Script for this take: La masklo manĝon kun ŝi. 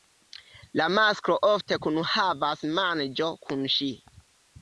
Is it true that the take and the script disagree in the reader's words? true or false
true